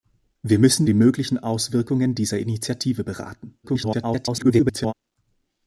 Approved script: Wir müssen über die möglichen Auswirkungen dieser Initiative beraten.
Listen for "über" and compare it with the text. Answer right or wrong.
wrong